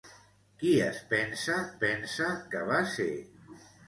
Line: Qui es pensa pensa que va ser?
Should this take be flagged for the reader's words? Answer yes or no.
no